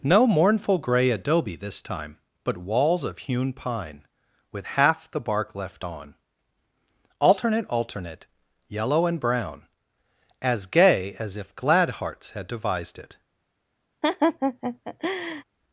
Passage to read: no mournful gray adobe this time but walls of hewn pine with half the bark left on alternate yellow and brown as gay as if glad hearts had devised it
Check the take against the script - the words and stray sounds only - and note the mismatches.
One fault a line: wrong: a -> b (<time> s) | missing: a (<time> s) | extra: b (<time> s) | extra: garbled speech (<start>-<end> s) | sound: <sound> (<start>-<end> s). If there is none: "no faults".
extra: alternate (7.7 s)
sound: laugh (14.0-15.4 s)